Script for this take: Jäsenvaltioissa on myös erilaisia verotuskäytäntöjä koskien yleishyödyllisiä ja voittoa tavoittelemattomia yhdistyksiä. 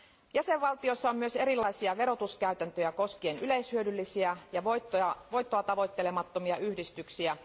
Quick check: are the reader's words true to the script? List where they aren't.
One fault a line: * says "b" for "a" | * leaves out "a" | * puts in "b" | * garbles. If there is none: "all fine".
all fine